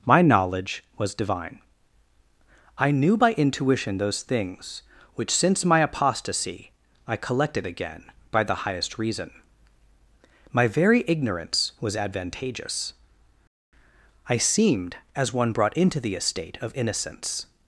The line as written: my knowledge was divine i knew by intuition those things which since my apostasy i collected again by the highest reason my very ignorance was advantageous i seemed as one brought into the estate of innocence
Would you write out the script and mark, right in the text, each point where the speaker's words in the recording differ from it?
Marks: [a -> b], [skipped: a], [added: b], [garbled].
my knowledge was divine i knew by intuition those things which since my apostasy i collected again by the highest reason my very ignorance was advantageous i seemed as one brought into the estate of innocence